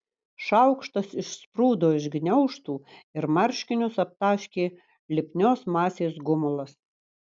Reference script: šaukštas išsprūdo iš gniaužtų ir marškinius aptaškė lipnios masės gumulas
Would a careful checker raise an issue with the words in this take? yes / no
no